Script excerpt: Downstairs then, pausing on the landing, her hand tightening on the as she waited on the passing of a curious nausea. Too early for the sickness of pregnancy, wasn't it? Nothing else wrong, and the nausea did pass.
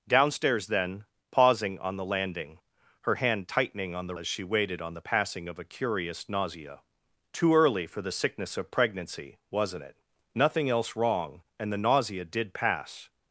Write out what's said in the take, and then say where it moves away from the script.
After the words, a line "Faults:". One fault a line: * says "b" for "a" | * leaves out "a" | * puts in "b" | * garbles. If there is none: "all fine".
Downstairs then, pausing on the landing, her hand tightening on the as she waited on the passing of a curious nausea. Too early for the sickness of pregnancy, wasn't it? Nothing else wrong, and the nausea did pass.
Faults:
all fine